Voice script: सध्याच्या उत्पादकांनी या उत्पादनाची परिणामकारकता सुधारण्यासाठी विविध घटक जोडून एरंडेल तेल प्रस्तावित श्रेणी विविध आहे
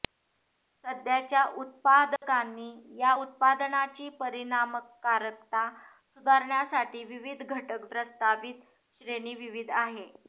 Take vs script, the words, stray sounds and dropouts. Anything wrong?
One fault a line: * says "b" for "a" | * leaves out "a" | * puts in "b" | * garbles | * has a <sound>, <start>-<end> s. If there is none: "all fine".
* has a dropout, 2.2-2.2 s
* leaves out "जोडून एरंडेल तेल"